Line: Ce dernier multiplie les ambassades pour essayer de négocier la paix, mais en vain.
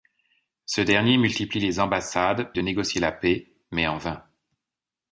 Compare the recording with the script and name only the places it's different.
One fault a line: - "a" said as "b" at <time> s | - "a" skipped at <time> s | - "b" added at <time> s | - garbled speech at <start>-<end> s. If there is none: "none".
- "pour essayer" skipped at 2.5 s